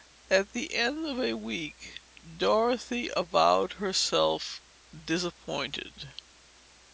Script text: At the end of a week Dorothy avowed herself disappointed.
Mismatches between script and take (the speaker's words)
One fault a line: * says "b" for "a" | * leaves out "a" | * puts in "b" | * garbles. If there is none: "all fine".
all fine